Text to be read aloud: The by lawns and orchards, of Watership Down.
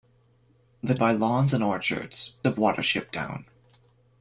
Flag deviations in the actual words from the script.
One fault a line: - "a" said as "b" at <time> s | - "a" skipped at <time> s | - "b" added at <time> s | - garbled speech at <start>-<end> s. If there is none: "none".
none